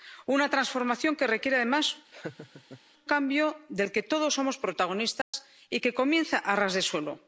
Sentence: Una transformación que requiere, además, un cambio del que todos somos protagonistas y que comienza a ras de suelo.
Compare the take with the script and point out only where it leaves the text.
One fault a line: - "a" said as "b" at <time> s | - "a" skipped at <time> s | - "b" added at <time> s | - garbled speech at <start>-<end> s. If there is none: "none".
- "un" skipped at 2.0 s